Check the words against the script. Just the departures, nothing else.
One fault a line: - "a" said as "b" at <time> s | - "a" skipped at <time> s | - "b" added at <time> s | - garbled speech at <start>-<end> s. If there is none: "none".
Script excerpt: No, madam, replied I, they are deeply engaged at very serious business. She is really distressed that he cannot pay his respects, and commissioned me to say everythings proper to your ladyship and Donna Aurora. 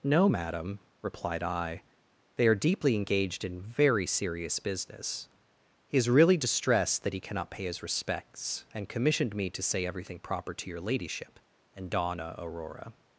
- "at" said as "in" at 3.4 s
- "She" said as "He" at 5.9 s
- "everythings" said as "everything" at 9.9 s